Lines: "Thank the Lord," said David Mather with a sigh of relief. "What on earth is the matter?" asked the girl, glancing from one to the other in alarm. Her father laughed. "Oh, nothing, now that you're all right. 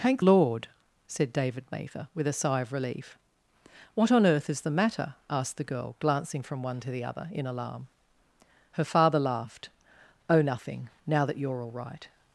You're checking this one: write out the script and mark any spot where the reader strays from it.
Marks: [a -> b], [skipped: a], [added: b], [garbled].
"Thank [skipped: the] Lord," said David Mather with a sigh of relief. "What on earth is the matter?" asked the girl, glancing from one to the other in alarm. Her father laughed. "Oh, nothing, now that you're all right.